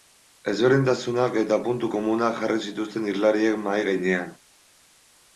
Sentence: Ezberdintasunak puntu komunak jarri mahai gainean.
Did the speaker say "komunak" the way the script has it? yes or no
yes